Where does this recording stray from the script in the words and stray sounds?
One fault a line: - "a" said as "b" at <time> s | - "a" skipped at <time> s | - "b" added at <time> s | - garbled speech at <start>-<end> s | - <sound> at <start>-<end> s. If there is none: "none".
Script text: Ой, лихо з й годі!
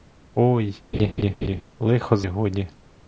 - laugh at 0.9-1.6 s